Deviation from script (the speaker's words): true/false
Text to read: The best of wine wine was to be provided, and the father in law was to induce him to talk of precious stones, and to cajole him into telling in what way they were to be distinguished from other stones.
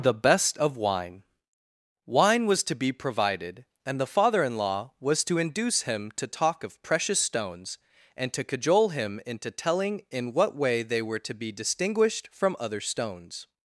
false